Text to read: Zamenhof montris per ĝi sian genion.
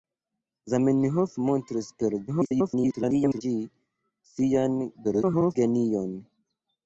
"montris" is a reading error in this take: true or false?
false